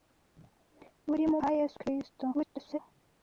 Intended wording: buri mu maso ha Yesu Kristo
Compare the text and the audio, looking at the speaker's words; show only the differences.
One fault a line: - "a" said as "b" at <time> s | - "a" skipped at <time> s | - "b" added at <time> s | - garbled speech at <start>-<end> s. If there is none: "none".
- "maso" skipped at 1.4 s
- garbled speech at 2.3-2.8 s